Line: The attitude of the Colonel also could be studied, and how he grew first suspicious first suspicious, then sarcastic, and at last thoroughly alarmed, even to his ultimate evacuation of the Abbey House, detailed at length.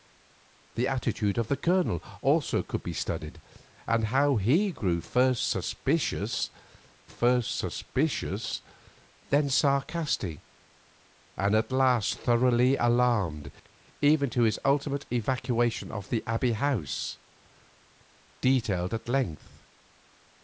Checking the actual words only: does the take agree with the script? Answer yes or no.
yes